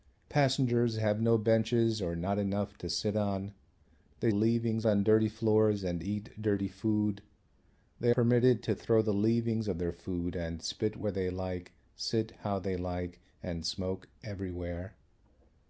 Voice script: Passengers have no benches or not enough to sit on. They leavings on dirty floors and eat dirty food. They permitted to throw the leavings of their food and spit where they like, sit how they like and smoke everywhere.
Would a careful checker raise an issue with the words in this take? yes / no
no